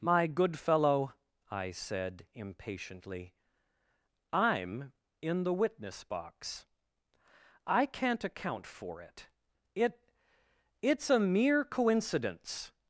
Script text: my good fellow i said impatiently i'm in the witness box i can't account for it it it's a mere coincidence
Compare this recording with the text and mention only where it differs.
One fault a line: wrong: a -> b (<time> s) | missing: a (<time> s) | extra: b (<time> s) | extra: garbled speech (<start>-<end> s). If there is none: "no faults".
no faults